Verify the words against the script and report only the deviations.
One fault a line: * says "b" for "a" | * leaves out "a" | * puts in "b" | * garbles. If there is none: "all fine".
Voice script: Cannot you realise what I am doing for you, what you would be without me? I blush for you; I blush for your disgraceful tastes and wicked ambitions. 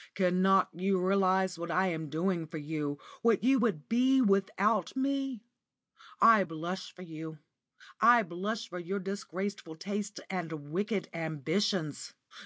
all fine